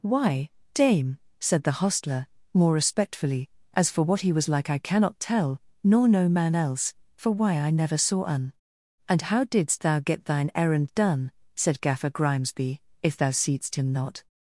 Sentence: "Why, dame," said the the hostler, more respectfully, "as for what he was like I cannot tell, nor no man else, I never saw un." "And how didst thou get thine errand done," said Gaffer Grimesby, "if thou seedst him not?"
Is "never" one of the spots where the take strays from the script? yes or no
no